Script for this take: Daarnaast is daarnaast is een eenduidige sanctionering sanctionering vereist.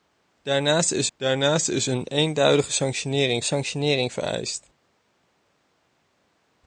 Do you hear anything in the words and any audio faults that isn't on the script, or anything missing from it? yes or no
no